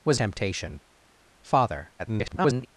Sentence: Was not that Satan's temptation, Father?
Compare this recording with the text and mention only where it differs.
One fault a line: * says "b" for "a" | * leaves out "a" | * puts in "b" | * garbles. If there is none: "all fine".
* leaves out "not that Satan's"
* garbles